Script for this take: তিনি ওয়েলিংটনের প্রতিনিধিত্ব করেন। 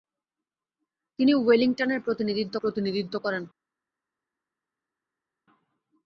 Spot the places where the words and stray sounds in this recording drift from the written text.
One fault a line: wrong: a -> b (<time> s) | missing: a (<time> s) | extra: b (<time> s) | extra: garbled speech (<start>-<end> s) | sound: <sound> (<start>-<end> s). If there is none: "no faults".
extra: প্রতিনিধিত্ব (2.6 s)